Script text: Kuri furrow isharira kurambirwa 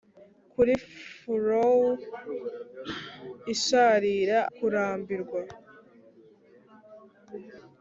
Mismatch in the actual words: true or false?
false